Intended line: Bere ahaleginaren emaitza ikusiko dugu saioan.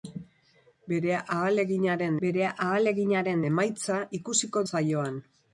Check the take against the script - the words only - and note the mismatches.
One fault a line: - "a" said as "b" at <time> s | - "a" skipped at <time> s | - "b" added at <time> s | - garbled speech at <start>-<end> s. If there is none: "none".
- "bere ahaleginaren" added at 2.3 s
- "dugu" skipped at 4.6 s